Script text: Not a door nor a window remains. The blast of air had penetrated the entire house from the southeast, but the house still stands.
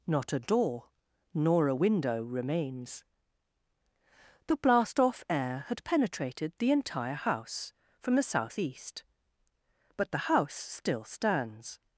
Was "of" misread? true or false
true